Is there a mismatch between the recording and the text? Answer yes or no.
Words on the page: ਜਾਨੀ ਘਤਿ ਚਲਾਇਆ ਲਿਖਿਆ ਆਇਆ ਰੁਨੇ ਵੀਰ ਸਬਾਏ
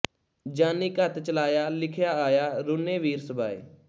no